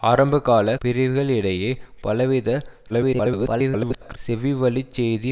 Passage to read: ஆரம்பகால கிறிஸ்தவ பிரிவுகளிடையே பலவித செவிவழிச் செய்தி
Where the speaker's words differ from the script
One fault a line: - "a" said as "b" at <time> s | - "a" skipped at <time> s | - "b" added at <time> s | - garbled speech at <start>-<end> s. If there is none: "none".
- "கிறிஸ்தவ" skipped at 0.8 s
- garbled speech at 2.9-4.2 s